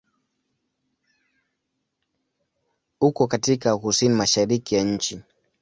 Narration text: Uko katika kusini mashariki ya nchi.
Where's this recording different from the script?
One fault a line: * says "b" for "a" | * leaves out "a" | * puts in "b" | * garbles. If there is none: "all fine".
all fine